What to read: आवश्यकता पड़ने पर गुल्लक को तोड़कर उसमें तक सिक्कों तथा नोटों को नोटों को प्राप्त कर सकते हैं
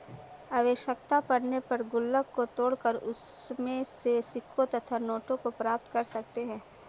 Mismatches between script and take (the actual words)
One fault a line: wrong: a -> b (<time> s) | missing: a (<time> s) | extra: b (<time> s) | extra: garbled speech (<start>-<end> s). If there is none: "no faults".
wrong: तक -> से (3.8 s)
missing: नोटों को (5.5 s)